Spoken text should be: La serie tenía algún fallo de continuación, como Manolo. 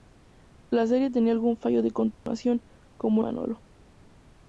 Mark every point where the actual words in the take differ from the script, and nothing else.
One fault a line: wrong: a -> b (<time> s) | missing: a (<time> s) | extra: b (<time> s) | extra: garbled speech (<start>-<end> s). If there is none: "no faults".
no faults